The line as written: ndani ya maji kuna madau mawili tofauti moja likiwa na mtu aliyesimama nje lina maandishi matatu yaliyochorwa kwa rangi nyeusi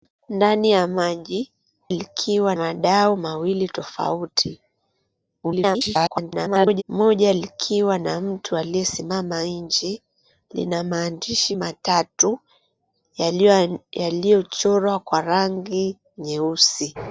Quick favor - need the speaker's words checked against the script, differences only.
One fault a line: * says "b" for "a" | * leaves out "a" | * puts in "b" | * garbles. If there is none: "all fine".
* says "likiwa" for "kuna"
* garbles